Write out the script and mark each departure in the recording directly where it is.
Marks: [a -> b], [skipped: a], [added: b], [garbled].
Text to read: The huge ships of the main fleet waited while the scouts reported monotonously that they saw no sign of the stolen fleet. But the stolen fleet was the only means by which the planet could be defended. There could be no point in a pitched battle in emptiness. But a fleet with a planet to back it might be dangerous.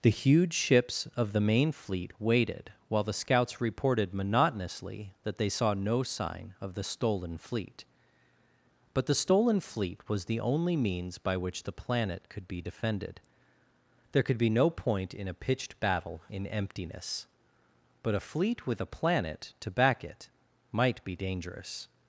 The huge ships of the main fleet waited while the scouts reported monotonously that they saw no sign of the stolen fleet. But the stolen fleet was the only means by which the planet could be defended. There could be no point in a pitched battle in emptiness. But a fleet with a planet to back it might be dangerous.